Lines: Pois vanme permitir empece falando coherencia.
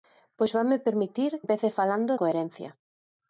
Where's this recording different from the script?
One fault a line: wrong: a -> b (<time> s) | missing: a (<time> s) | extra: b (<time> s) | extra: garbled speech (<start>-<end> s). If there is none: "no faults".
no faults